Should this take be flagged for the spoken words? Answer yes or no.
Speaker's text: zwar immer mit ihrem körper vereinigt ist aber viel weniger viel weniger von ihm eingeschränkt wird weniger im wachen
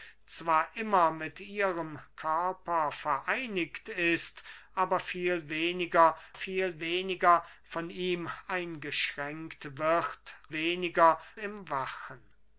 no